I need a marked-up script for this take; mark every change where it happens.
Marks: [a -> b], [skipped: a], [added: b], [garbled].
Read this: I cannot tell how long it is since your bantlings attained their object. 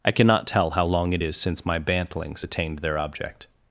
I cannot tell how long it is since [your -> my] bantlings attained their object.